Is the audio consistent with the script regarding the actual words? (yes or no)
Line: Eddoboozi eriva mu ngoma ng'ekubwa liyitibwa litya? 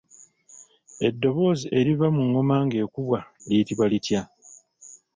yes